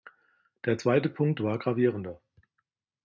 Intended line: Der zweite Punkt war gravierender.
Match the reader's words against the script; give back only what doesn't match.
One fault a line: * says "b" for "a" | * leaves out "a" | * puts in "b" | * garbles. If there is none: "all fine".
all fine